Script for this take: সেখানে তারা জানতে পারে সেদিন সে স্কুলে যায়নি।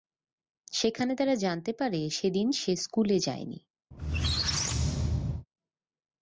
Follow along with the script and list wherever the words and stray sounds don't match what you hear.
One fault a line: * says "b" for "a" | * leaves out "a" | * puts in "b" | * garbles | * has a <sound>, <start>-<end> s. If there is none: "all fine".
* has a squeak, 3.9-5.5 s